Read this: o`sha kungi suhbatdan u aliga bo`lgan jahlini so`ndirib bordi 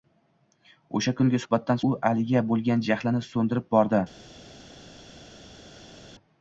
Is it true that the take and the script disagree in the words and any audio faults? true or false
false